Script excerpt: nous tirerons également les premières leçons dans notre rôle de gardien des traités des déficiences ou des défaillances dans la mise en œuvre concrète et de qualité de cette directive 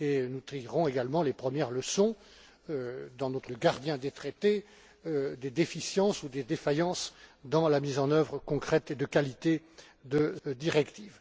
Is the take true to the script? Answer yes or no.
no